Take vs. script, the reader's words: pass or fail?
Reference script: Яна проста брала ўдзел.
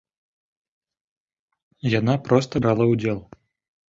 pass